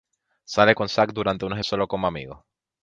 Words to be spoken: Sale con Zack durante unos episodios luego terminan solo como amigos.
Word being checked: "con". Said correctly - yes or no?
yes